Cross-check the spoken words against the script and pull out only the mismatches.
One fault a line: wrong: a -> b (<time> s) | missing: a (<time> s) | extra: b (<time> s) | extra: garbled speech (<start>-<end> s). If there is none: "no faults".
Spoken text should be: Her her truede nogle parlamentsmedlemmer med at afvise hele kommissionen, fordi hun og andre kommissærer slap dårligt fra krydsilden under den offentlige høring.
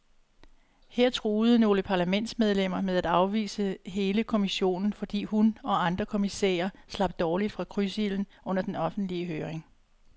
missing: her (1.1 s)